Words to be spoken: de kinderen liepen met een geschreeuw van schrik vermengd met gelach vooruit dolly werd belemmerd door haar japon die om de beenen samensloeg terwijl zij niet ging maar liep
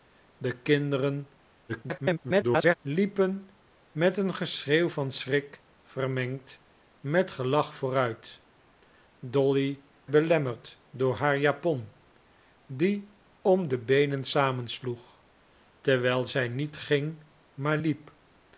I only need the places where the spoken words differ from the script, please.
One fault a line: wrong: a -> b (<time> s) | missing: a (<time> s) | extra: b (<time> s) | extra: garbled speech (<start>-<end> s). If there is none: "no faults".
extra: garbled speech (1.7-2.8 s)
missing: werd (9.8 s)